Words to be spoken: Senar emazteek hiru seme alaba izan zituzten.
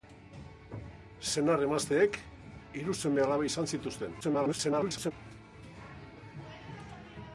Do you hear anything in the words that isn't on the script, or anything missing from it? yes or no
yes